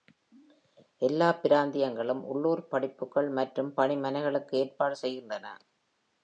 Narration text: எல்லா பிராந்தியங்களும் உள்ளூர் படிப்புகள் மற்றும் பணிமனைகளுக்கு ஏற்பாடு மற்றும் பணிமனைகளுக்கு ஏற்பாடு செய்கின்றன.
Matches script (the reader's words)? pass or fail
fail